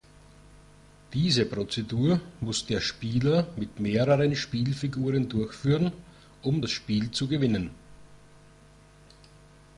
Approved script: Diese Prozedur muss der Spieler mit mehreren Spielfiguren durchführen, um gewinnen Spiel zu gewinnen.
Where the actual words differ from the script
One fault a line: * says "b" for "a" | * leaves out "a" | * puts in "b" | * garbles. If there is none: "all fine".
* says "das" for "gewinnen"